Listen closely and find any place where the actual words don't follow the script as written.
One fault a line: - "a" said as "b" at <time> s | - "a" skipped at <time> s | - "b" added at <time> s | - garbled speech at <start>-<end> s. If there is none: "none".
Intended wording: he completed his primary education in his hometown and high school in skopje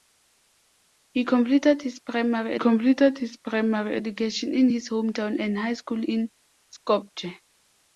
- "completed his primary" added at 2.6 s